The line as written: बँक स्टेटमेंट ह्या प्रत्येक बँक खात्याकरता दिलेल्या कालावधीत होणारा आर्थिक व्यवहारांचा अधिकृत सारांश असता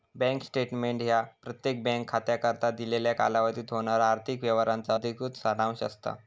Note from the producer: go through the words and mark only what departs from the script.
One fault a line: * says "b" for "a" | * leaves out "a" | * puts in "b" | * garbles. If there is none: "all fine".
all fine